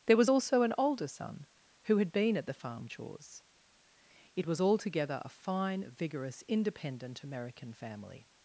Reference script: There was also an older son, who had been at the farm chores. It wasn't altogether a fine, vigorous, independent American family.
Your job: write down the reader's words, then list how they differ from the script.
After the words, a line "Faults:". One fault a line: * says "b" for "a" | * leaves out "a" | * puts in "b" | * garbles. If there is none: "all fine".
There was also an older son, who had been at the farm chores. It was altogether a fine, vigorous, independent American family.
Faults:
* says "was" for "wasn't"